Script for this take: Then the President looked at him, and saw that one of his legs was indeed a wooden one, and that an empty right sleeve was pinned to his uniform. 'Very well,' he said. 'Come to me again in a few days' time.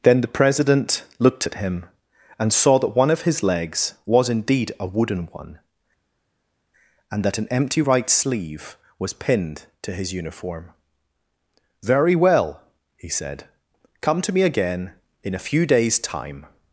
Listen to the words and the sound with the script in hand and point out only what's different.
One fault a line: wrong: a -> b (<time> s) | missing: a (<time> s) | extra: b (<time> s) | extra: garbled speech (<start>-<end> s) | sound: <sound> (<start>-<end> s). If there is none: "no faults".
no faults